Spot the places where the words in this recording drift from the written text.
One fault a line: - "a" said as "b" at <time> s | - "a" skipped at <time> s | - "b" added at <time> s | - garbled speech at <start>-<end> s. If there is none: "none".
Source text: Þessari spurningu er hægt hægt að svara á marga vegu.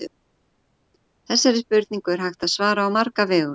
- "hægt" skipped at 2.5 s